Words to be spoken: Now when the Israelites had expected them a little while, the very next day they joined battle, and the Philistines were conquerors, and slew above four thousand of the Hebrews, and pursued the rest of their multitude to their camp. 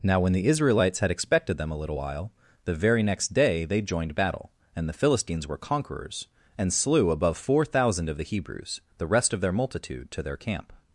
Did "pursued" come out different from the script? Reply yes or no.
yes